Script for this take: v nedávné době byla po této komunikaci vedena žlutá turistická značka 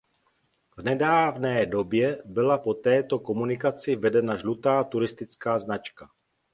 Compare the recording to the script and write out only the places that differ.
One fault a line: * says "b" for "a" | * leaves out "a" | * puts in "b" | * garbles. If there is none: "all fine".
all fine